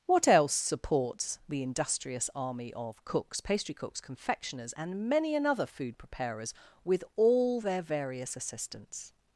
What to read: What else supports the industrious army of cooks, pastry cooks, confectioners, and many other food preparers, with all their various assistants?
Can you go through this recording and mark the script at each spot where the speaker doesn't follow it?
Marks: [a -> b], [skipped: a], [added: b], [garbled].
What else supports the industrious army of cooks, pastry cooks, confectioners, and many [other -> another] food preparers, with all their various assistants?